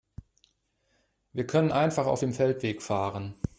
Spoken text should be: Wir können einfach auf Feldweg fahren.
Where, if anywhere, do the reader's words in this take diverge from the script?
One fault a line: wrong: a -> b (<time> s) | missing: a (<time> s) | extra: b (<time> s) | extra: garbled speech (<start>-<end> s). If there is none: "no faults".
extra: dem (2.2 s)